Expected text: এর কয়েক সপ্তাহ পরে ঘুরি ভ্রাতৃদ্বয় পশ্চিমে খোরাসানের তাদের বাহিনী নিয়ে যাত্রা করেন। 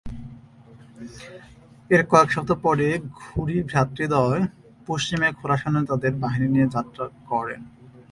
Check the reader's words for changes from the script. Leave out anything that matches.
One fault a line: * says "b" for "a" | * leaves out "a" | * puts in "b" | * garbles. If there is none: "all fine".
all fine